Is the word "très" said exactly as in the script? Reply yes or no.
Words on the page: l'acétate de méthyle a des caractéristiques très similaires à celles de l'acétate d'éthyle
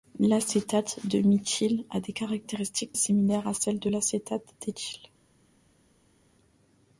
no